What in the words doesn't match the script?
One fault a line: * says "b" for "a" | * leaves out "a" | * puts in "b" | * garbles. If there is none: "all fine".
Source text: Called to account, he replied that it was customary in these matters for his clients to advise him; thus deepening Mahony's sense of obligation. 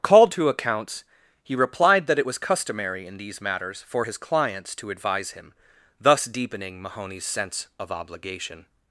* says "accounts" for "account"